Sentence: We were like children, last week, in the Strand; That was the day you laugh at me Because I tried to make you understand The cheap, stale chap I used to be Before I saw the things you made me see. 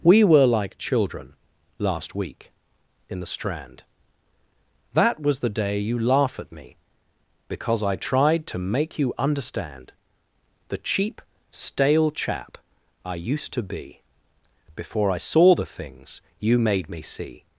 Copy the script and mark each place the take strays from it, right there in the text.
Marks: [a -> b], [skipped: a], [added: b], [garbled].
We were like children, last week, in the Strand; That was the day you laugh at me Because I tried to make you understand The cheap, stale chap I used to be Before I saw the things you made me see.